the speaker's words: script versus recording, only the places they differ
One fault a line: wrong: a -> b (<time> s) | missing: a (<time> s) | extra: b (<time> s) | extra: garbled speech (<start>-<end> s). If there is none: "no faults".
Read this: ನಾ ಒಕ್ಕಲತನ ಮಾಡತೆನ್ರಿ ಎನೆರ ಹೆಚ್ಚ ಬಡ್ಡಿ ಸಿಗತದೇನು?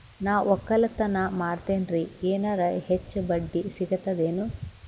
no faults